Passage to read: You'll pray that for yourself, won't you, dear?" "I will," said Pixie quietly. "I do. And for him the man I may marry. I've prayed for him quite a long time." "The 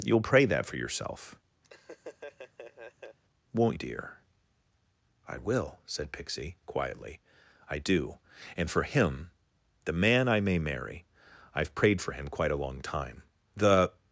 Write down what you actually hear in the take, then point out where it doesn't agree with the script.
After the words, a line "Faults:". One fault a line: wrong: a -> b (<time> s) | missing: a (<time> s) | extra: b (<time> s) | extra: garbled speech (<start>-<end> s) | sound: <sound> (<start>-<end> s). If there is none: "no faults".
You'll pray that for yourself, won't dear?" "I will," said Pixie quietly. "I do. And for him the man I may marry. I've prayed for him quite a long time." "The
Faults:
sound: laugh (1.6-3.2 s)
missing: you (3.8 s)